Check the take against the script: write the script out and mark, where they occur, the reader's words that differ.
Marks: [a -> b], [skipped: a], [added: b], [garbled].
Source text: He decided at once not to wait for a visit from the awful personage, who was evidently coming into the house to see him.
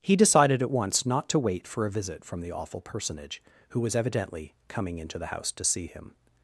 He decided at once not to wait for a visit from the awful personage, who was evidently coming into the house to see him.